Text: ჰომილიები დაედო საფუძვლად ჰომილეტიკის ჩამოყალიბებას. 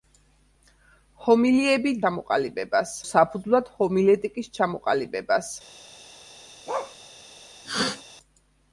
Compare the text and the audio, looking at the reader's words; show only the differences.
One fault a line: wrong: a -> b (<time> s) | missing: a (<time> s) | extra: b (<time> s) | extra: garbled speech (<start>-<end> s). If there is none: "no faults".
wrong: დაედო -> ჩამოყალიბებას (2.0 s)